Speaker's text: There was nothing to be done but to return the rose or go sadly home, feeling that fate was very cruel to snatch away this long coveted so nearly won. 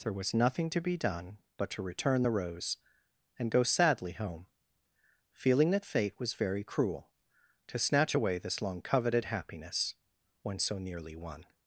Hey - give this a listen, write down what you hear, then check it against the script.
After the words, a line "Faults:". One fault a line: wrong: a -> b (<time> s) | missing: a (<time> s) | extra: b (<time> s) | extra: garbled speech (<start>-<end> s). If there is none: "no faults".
There was nothing to be done but to return the rose and go sadly home, feeling that fate was very cruel to snatch away this long coveted happiness when so nearly won.
Faults:
wrong: or -> and (3.4 s)
extra: happiness when (9.2 s)